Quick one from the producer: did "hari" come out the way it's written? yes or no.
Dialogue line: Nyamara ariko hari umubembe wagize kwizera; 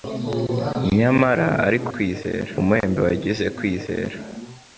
no